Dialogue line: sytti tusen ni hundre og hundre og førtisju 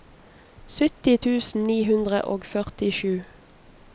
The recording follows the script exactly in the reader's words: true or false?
false